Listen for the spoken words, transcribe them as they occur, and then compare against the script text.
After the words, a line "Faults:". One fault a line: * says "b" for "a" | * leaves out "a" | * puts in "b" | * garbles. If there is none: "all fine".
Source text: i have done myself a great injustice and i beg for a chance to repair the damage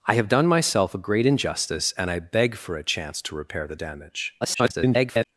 i have done myself a great injustice and i beg for a chance to repair the damage [garbled]
Faults:
* garbles